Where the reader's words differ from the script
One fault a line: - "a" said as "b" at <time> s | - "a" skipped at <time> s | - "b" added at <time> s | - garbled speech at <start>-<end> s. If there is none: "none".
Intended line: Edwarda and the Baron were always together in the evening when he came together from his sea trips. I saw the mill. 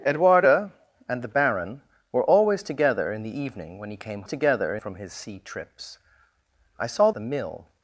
none